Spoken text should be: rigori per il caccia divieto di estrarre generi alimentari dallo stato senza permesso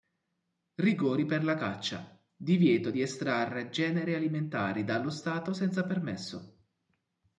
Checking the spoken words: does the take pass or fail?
fail